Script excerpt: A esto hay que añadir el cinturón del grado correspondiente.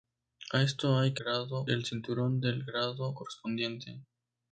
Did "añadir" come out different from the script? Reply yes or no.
yes